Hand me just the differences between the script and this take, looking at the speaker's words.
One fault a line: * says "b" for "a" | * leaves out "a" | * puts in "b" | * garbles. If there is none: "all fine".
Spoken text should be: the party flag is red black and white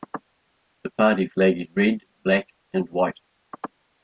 all fine